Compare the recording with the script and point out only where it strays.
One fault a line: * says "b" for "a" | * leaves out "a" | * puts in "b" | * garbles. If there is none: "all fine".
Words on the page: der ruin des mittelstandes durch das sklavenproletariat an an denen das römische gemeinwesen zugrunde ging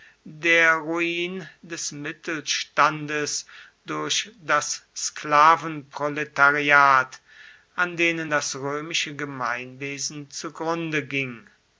* leaves out "an"